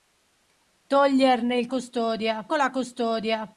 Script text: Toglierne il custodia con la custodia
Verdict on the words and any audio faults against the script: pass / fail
pass